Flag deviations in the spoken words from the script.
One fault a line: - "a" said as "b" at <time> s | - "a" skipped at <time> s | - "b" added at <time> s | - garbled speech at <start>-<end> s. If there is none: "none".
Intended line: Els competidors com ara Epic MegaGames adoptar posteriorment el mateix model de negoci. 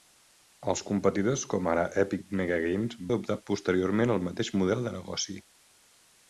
none